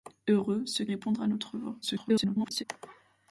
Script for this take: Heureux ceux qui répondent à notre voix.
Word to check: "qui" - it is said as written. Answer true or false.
false